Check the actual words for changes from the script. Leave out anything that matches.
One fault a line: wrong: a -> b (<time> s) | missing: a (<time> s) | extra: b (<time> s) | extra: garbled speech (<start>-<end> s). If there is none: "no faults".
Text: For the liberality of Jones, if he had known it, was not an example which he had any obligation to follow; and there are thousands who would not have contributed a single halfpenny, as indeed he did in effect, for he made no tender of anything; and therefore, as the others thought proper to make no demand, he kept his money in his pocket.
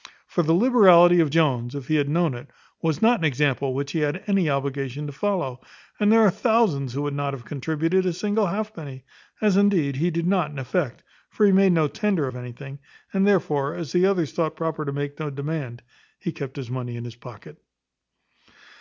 extra: not (10.3 s)